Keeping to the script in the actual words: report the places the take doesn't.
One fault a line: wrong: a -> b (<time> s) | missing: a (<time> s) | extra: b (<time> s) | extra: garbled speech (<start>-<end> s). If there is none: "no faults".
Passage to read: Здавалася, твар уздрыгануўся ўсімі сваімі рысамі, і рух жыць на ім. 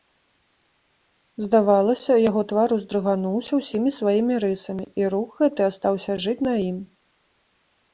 extra: яго (2.3 s)
extra: гэты астаўся (5.5 s)